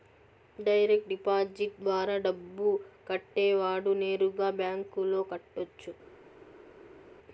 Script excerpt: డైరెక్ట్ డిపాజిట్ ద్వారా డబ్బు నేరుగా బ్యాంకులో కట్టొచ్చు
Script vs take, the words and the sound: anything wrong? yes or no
yes